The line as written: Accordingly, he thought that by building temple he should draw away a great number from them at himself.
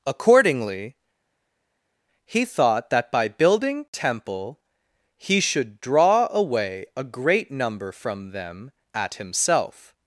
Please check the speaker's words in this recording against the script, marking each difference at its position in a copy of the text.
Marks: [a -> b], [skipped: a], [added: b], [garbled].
Accordingly, he thought that by building temple he should draw away a great number from them at himself.